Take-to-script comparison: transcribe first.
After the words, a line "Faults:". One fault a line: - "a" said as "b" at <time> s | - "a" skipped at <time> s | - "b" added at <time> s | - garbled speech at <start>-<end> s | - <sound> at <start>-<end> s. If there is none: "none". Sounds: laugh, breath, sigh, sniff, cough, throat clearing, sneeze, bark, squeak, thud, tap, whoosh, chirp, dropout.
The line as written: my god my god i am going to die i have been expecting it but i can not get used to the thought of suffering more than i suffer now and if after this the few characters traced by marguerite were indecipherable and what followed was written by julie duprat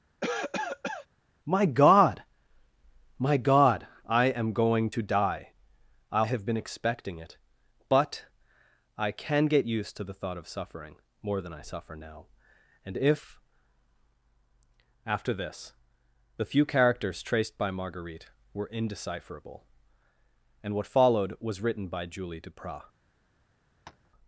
my god my god i am going to die i have been expecting it but i can get used to the thought of suffering more than i suffer now and if after this the few characters traced by marguerite were indecipherable and what followed was written by julie duprat
Faults:
- cough at 0.2-1.1 s
- "not" skipped at 9.5 s
- tap at 23.9-24.1 s